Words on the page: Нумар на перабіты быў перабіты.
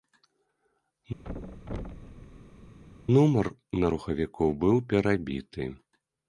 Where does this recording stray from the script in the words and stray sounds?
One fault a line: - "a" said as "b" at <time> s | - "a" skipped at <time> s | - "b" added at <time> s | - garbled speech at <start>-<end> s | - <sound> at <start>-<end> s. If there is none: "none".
- thud at 1.2-2.8 s
- "перабіты" said as "рухавіку" at 4.0 s